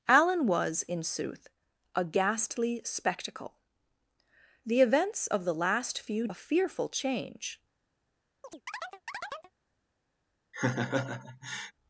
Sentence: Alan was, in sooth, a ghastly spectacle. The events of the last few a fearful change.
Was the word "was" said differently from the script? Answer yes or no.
no